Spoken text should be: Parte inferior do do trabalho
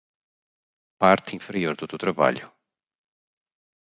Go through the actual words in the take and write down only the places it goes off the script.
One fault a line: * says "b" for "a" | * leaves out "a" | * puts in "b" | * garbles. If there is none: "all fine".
all fine